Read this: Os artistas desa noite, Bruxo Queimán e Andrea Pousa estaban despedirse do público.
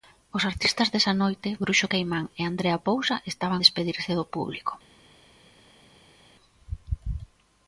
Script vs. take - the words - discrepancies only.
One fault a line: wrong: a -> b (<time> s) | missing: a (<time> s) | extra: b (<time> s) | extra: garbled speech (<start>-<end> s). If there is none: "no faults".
no faults